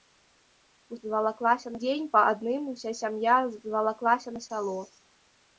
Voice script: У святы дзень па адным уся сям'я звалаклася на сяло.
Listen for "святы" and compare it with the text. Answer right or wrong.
wrong